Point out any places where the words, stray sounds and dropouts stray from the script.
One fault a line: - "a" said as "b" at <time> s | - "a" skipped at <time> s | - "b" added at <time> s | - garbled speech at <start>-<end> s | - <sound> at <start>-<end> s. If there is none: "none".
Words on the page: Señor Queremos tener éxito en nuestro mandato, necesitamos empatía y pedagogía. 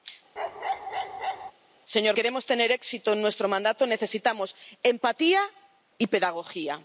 - bark at 0.4-1.5 s